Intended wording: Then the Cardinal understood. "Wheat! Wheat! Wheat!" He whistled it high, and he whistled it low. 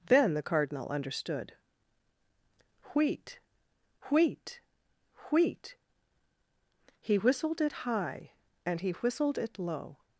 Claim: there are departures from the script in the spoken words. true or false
false